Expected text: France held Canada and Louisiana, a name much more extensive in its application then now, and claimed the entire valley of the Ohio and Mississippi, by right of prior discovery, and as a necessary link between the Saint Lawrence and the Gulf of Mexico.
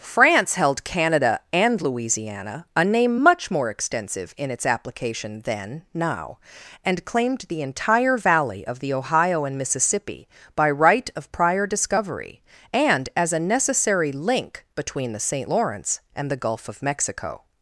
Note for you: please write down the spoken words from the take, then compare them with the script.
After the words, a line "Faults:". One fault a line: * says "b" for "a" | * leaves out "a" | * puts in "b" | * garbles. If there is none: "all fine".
France held Canada and Louisiana, a name much more extensive in its application then now, and claimed the entire valley of the Ohio and Mississippi, by right of prior discovery, and as a necessary link between the Saint Lawrence and the Gulf of Mexico.
Faults:
all fine